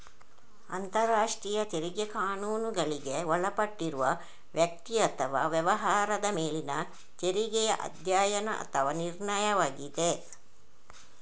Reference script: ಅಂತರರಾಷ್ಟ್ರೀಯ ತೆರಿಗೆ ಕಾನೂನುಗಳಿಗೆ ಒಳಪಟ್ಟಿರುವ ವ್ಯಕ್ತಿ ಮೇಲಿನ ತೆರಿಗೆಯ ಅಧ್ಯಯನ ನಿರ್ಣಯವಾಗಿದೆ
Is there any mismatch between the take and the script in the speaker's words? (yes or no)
yes